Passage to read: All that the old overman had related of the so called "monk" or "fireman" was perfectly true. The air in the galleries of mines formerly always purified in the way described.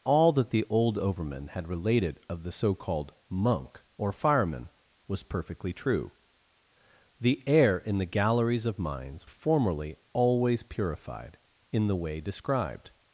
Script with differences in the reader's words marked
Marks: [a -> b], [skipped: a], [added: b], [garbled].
All that the old overman had related of the so called "monk" or "fireman" was perfectly true. The air in the galleries of mines formerly always purified in the way described.